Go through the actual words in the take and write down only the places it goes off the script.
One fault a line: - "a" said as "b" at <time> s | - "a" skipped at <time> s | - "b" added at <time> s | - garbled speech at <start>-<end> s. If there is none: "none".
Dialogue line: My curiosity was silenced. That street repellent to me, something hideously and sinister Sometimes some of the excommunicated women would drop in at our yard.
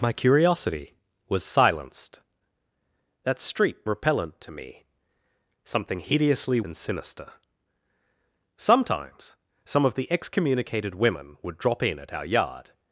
none